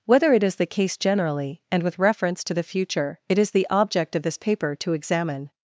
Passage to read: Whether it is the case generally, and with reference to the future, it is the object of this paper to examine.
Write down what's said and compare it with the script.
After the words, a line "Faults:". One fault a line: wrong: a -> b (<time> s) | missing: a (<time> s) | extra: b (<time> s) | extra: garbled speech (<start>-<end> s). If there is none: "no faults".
Whether it is the case generally, and with reference to the future, it is the object of this paper to examine.
Faults:
no faults